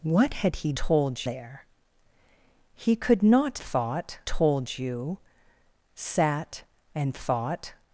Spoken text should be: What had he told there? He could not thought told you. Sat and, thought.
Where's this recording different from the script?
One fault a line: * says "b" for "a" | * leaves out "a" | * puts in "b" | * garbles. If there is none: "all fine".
all fine